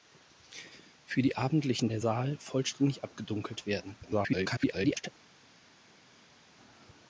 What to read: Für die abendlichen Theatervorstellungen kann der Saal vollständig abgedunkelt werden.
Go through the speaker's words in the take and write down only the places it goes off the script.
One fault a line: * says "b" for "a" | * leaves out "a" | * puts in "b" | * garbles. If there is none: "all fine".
* leaves out "Theatervorstellungen kann"
* garbles